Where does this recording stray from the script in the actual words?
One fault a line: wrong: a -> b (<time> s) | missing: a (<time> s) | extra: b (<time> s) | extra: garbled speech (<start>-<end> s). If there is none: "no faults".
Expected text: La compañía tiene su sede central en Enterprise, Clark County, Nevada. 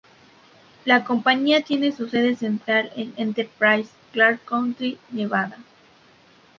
no faults